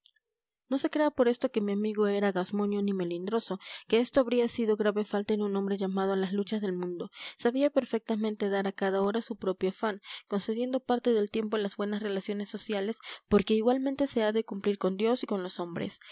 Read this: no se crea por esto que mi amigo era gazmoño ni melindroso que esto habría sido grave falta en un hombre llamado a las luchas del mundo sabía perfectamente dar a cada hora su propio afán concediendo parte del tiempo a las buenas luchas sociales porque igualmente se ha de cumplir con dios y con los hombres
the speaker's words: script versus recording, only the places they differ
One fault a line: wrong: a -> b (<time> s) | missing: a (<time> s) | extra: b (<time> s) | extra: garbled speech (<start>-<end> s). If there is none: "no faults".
wrong: luchas -> relaciones (12.0 s)